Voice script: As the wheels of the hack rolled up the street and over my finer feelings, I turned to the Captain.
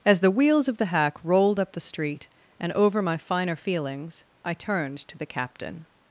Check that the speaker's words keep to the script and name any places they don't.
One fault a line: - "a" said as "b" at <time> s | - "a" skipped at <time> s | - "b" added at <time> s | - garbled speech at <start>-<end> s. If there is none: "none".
none